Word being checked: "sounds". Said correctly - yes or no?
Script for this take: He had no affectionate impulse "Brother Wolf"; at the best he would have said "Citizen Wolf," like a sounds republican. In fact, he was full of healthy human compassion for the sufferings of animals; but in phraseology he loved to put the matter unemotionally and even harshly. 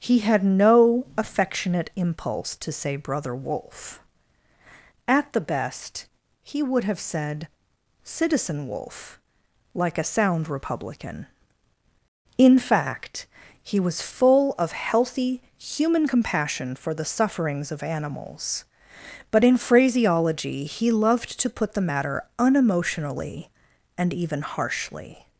no